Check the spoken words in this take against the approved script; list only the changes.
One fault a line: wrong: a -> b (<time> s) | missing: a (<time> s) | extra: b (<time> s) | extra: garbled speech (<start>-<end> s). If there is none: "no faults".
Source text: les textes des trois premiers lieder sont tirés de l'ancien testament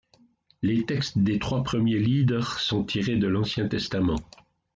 no faults